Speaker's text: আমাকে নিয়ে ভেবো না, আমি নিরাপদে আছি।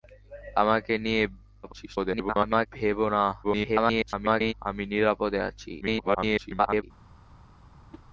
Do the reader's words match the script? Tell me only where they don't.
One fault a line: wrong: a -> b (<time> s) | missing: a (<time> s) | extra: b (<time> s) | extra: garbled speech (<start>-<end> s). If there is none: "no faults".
extra: garbled speech (1.6-2.7 s)
extra: garbled speech (3.4-4.5 s)
extra: garbled speech (5.8-6.8 s)